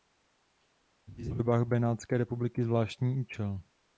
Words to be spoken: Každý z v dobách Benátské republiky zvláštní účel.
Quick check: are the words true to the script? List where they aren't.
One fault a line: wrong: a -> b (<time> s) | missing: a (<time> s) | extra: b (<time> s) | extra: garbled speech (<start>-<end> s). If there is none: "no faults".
no faults